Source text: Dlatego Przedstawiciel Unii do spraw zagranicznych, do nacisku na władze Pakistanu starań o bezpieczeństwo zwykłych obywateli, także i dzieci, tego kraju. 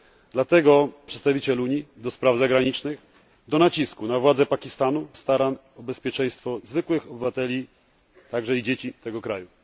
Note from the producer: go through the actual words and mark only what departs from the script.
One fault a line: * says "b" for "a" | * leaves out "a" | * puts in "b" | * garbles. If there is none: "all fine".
all fine